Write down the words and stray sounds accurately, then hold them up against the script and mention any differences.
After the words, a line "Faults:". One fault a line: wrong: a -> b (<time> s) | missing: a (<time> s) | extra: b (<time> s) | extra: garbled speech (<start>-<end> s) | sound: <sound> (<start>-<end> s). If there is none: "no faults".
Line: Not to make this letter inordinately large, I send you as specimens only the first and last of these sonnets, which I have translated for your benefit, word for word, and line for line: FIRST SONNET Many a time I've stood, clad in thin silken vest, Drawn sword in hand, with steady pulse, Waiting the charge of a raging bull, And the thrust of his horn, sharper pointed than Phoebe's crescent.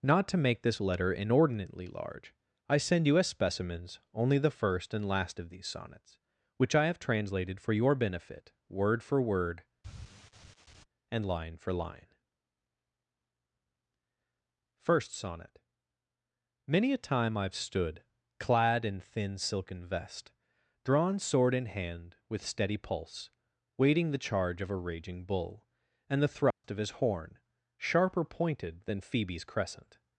Not to make this letter inordinately large, I send you as specimens only the first and last of these sonnets, which I have translated for your benefit, word for word, and line for line: FIRST SONNET Many a time I've stood, clad in thin silken vest, Drawn sword in hand, with steady pulse, Waiting the charge of a raging bull, And the thrust of his horn, sharper pointed than Phoebe's crescent.
Faults:
sound: sigh (9.8-10.8 s)
sound: dropout (26.5-26.6 s)